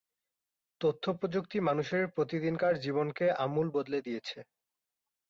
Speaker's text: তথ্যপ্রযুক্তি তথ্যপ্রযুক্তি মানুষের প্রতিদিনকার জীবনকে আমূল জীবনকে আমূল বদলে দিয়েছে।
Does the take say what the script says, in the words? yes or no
no